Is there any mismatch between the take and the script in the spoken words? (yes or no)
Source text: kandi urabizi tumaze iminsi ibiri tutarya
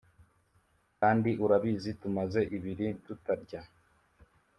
yes